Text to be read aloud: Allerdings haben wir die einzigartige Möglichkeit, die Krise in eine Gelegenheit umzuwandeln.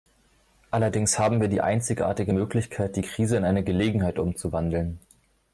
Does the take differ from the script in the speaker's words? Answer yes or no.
no